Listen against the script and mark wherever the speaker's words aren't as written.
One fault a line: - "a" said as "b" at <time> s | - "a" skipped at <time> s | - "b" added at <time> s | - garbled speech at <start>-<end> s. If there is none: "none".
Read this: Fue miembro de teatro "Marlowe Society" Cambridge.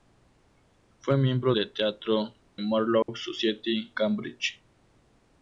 none